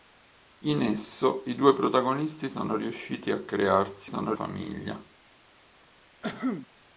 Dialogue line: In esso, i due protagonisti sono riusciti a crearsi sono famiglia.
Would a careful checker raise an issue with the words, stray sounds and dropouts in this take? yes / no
yes